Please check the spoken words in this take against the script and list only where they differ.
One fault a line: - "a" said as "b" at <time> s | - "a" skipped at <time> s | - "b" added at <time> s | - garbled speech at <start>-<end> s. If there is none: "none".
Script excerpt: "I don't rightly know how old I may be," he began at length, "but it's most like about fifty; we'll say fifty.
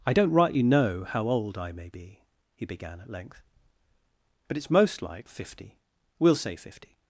- "about" skipped at 5.3 s